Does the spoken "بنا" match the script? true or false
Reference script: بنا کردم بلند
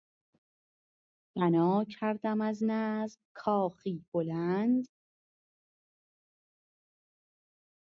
true